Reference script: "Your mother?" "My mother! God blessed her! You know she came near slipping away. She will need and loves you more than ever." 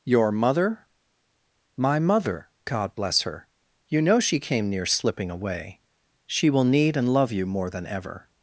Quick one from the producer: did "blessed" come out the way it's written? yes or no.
no